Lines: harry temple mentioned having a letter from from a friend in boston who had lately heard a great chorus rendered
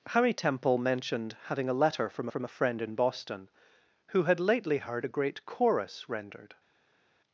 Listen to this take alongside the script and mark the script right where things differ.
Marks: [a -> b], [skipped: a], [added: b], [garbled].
harry temple mentioned having a letter from from a friend in boston who had lately heard a great chorus rendered